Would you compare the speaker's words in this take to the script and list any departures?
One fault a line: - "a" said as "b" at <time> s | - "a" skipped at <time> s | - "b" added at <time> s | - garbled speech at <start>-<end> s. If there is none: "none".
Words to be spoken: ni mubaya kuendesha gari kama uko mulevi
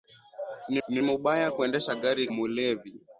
- "ni" added at 0.9 s
- "kama uko" skipped at 2.3 s